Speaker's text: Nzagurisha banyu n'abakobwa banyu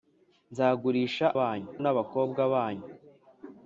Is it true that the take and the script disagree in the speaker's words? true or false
false